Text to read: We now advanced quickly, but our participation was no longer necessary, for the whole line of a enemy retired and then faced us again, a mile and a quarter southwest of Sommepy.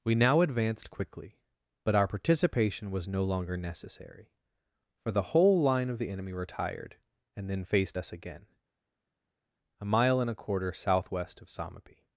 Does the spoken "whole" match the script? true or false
true